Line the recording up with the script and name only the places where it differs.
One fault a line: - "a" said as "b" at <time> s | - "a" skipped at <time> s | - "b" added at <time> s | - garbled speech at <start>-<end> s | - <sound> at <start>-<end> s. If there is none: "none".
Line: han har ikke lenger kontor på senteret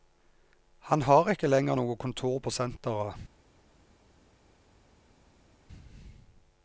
- "noe" added at 1.8 s